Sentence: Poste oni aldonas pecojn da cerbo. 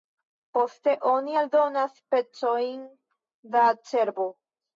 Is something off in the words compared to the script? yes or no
no